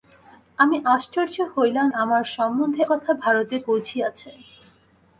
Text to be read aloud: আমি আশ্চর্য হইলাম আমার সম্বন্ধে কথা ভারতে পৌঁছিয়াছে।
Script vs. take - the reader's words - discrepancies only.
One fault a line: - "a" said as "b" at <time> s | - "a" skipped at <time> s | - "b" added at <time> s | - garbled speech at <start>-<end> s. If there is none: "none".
none